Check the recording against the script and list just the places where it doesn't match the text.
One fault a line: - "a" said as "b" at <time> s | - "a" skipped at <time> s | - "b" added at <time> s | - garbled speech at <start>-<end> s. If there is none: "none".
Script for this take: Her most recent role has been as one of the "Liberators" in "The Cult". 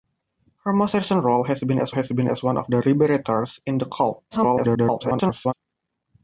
- "has been as" added at 1.9 s
- garbled speech at 4.3-5.5 s